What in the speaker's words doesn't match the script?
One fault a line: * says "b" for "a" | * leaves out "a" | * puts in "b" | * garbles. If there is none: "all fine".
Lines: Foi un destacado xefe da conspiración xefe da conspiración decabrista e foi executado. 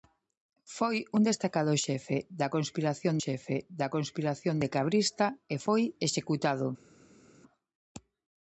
all fine